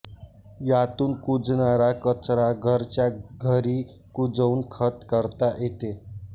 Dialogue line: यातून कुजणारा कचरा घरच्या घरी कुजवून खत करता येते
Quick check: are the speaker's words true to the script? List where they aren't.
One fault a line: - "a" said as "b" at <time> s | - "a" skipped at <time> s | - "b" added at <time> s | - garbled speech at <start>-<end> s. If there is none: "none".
none